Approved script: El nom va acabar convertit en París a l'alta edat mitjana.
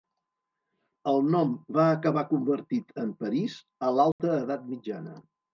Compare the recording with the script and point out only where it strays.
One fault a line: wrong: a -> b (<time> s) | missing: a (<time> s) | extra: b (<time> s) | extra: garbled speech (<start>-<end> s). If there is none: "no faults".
no faults